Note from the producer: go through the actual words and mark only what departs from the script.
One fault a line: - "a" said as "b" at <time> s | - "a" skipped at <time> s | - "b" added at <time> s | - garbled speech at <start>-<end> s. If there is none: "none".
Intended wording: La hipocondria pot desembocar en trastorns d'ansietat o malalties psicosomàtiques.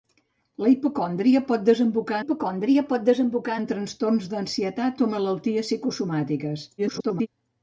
- "hipocondria pot desembocar" added at 2.2 s
- garbled speech at 6.8-7.3 s